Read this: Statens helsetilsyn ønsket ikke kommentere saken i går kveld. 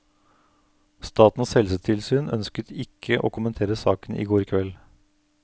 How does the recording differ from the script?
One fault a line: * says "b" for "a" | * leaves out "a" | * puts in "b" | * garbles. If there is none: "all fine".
* puts in "å"